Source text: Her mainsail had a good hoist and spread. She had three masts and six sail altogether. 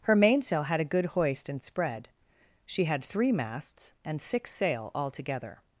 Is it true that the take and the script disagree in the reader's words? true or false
false